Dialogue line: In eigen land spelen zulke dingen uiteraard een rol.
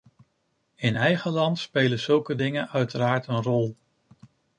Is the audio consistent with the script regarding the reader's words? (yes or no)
yes